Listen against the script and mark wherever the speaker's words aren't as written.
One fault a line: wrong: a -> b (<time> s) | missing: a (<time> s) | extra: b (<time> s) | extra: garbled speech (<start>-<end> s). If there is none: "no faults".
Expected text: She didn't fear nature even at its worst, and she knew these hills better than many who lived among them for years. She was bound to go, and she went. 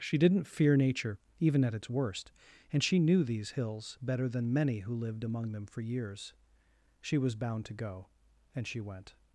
no faults